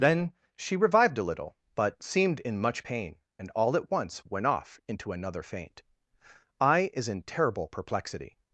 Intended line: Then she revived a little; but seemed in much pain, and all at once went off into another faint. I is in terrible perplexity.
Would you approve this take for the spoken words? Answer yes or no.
yes